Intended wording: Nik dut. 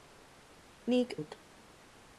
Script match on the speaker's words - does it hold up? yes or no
yes